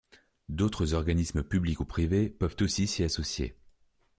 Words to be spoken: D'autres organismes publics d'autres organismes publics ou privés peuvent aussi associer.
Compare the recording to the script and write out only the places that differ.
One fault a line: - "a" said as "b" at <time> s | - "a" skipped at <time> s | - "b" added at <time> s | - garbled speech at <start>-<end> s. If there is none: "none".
- "d'autres organismes publics" skipped at 1.8 s
- "s'y" added at 2.9 s